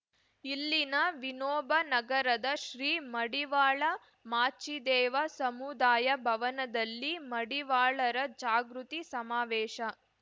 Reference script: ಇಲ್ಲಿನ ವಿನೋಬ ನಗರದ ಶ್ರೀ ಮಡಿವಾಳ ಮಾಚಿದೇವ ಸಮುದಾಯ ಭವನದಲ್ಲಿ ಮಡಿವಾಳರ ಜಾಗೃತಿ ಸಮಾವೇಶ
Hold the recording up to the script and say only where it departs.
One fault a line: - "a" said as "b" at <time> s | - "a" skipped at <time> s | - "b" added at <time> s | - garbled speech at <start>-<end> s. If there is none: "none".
none